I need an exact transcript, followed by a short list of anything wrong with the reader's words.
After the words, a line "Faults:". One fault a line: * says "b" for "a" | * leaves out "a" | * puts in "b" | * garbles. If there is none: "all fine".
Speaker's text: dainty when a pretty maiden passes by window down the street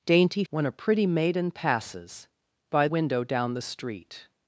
dainty when a pretty maiden passes by window down the street
Faults:
all fine